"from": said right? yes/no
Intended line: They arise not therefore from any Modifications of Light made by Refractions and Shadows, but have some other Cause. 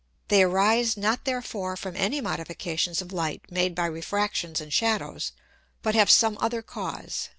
yes